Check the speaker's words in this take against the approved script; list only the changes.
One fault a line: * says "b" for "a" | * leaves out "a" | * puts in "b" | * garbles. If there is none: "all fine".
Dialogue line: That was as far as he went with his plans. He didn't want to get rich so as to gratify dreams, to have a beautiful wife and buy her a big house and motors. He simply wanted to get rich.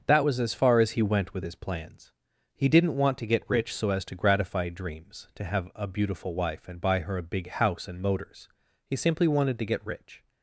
all fine